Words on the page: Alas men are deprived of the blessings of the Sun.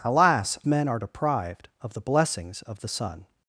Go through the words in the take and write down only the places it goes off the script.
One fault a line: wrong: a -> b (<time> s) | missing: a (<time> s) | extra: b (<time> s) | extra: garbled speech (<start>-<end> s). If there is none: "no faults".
no faults